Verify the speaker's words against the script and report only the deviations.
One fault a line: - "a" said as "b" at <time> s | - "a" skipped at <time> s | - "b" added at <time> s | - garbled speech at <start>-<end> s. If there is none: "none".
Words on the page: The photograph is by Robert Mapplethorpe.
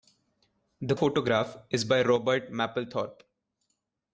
none